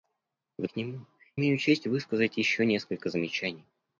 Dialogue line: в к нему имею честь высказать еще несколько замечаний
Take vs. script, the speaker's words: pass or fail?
pass